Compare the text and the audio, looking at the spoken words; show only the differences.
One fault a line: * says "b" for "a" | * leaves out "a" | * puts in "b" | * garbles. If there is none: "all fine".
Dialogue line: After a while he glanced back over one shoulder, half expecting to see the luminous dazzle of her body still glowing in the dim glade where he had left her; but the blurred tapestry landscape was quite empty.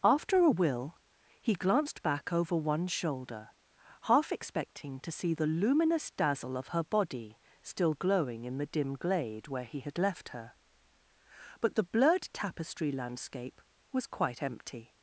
* says "will" for "while"